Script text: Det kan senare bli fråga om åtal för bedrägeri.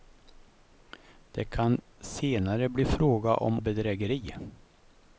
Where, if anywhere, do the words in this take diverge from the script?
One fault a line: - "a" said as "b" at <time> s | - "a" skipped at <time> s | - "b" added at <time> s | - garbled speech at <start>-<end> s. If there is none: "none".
- "åtal för" skipped at 3.6 s